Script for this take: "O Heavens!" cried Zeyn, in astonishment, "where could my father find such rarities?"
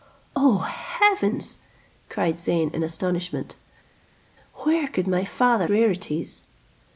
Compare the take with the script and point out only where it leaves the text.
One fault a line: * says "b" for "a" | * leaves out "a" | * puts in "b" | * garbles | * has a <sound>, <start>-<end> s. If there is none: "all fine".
* leaves out "find such"